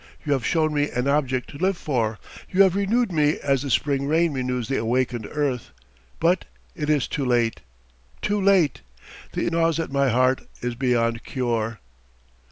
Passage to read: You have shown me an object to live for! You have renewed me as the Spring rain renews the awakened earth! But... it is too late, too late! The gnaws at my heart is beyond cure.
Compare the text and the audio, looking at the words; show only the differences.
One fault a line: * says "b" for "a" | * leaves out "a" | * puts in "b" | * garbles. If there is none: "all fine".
all fine